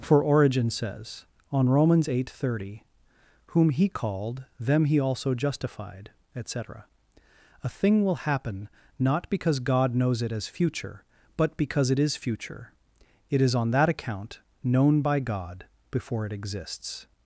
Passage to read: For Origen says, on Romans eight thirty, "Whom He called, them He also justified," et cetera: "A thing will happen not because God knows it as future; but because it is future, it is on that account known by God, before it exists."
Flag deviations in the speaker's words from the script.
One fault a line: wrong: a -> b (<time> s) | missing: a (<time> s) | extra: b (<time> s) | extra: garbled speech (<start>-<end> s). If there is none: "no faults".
no faults